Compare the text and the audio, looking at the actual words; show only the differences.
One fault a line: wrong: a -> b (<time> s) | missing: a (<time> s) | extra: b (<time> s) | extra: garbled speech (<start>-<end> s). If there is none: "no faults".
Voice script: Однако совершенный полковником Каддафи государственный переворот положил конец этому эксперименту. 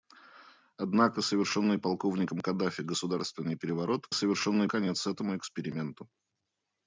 wrong: положил -> совершенный (4.1 s)